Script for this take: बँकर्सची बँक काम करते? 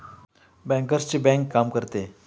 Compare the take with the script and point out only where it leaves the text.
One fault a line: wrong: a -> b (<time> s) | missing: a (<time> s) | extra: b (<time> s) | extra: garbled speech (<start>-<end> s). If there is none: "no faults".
no faults